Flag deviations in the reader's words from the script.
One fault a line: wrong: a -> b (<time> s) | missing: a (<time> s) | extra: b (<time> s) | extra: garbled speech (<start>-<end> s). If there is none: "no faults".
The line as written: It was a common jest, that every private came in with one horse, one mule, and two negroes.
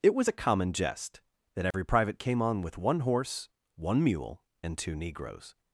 wrong: in -> on (2.4 s)